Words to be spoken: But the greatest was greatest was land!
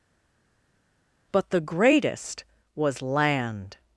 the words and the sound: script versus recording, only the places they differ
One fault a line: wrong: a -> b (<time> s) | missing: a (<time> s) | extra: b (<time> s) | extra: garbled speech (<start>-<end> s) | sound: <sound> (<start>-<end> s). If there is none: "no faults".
missing: greatest was (3.0 s)